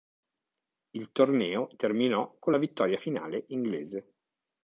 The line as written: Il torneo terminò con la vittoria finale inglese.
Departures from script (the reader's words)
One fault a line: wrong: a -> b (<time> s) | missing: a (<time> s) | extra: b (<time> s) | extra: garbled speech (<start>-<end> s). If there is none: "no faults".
no faults